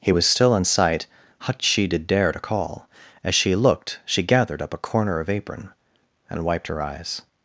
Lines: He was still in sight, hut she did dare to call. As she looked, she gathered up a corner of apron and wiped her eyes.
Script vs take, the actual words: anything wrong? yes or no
no